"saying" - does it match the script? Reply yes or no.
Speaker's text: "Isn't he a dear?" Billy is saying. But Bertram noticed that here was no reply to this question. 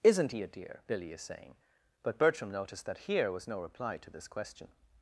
yes